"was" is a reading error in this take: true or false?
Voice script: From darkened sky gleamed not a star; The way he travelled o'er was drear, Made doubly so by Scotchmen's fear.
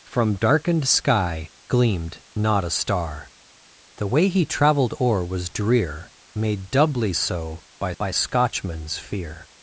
false